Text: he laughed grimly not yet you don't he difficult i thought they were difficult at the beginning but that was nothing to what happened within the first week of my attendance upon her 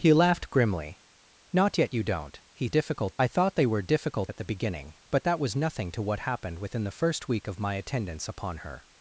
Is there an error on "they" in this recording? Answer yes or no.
no